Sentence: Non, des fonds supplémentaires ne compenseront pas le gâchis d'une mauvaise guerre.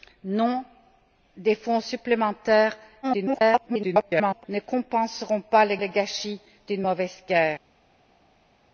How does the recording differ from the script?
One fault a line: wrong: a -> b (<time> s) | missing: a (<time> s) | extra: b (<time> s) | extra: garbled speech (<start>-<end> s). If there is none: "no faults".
extra: garbled speech (3.0-4.4 s)
extra: le (5.8 s)